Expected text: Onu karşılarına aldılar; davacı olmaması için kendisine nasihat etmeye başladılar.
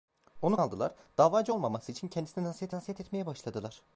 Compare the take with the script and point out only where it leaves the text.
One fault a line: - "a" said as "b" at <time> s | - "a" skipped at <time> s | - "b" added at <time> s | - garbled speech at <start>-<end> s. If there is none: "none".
- "karşılarına" skipped at 0.6 s
- "nasihat" added at 2.7 s